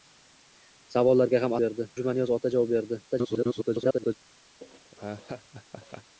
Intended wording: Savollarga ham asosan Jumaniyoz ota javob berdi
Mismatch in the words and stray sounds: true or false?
true